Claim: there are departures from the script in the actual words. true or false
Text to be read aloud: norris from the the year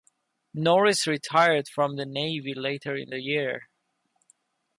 true